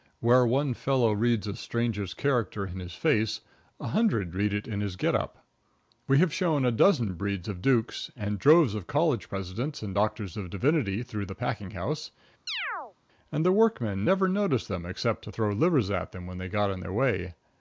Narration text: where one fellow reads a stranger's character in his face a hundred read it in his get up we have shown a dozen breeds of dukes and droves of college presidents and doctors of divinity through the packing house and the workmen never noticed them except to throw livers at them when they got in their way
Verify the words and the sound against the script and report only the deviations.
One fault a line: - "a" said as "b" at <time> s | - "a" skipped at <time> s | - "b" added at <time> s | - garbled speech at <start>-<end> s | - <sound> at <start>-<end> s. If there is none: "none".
- chirp at 12.5-12.9 s